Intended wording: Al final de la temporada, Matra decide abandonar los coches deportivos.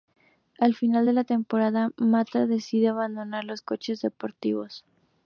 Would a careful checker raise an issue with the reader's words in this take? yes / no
no